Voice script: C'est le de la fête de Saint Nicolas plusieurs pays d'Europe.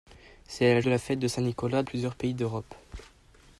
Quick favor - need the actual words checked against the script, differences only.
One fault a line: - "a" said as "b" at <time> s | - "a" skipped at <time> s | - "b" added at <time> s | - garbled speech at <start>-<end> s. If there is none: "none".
none